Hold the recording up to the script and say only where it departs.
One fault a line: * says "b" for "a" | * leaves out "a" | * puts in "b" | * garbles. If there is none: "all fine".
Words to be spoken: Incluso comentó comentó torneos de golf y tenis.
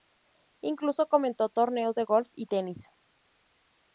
* leaves out "comentó"